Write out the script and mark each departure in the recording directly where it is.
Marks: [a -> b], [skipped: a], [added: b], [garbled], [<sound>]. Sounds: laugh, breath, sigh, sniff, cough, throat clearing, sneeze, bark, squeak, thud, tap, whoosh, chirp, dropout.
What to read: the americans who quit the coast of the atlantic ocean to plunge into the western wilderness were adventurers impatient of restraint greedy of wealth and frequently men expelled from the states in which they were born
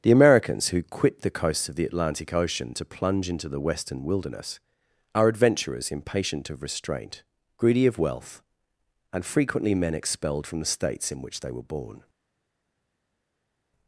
the americans who quit the [coast -> coasts] of the atlantic ocean to plunge into the western wilderness [were -> are] adventurers impatient of restraint greedy of wealth and frequently men expelled from the states in which they were born